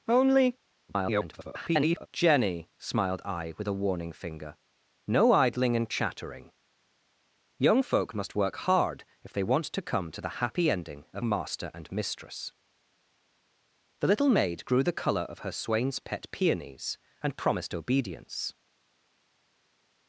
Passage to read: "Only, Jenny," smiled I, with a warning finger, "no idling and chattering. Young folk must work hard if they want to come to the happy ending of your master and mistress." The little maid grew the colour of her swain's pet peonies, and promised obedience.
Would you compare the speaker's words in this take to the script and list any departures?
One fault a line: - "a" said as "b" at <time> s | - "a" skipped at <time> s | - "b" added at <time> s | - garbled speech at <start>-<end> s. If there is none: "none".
- garbled speech at 0.9-2.1 s
- "your" skipped at 11.2 s